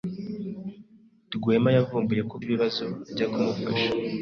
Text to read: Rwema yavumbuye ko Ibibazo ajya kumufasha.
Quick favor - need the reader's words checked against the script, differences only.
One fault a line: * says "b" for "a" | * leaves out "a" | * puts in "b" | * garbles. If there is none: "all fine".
all fine